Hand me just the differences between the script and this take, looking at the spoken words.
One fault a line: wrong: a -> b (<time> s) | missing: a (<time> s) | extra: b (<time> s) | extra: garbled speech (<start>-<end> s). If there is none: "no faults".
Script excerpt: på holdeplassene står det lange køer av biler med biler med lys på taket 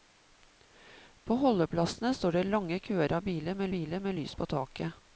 no faults